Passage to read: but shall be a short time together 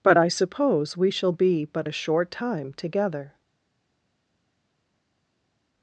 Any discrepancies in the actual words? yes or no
yes